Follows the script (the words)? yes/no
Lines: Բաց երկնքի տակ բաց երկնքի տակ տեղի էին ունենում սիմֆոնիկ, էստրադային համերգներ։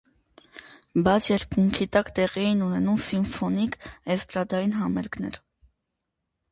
no